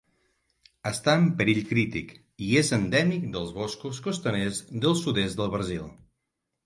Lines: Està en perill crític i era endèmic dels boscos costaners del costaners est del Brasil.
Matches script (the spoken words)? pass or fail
fail